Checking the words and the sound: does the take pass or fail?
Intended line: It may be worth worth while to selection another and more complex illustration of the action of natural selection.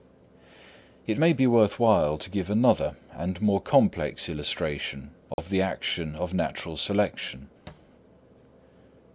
fail